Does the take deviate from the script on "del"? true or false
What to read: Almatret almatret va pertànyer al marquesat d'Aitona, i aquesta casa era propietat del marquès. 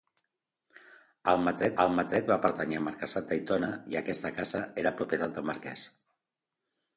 false